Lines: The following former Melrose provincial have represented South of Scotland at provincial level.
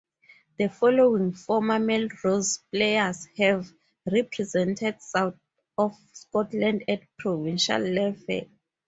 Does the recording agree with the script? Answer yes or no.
no